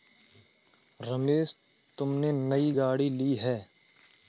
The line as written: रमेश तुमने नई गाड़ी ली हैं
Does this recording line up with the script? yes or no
yes